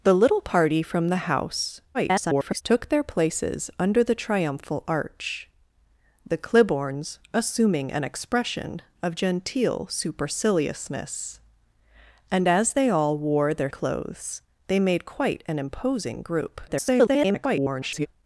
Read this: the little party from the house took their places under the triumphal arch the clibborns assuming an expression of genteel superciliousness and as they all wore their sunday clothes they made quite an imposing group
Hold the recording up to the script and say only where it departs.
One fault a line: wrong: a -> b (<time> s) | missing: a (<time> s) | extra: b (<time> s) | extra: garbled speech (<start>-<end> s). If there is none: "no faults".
extra: garbled speech (1.9-2.6 s)
missing: sunday (13.7 s)
extra: garbled speech (16.7-18.1 s)